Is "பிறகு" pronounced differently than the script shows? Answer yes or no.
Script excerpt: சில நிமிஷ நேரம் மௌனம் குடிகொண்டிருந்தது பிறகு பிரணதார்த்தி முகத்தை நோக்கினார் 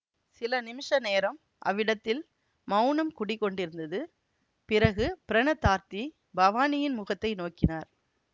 no